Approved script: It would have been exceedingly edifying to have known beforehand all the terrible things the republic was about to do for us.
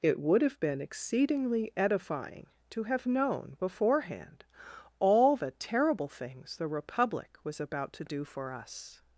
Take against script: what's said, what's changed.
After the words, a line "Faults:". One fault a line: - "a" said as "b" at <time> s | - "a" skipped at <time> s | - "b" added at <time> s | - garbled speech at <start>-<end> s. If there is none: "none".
It would have been exceedingly edifying to have known beforehand all the terrible things the republic was about to do for us.
Faults:
none